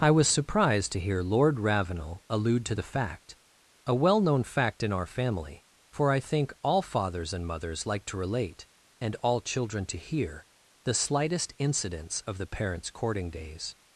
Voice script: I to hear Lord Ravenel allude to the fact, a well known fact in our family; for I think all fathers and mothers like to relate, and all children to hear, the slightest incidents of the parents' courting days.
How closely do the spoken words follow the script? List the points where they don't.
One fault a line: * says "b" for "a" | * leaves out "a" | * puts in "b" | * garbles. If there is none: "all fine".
* puts in "was surprised"